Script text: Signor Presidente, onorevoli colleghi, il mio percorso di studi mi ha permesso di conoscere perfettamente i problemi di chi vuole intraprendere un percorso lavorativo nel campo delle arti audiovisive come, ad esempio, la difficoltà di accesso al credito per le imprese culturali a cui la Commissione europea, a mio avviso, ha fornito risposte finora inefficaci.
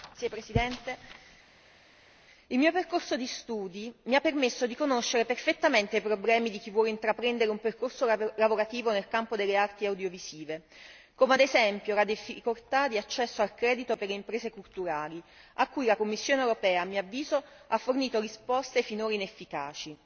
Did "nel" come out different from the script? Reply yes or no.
no